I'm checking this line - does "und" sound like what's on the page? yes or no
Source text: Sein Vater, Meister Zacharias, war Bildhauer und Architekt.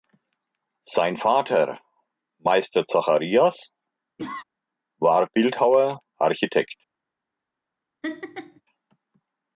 no